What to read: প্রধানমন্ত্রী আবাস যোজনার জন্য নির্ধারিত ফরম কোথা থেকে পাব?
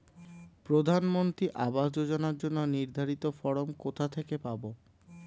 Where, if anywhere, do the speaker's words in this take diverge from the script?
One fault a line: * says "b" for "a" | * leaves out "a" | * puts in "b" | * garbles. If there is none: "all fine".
all fine